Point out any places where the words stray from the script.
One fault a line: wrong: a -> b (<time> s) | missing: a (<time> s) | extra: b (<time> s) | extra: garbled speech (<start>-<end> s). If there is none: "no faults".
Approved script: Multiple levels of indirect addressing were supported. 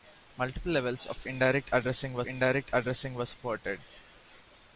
extra: indirect addressing were (2.3 s)